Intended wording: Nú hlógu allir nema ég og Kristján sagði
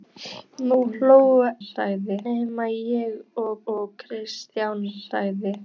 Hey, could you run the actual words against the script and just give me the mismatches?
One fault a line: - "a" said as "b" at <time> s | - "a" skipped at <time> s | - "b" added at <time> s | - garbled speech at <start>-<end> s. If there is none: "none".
- "allir" said as "sagði" at 1.7 s
- "og" added at 3.7 s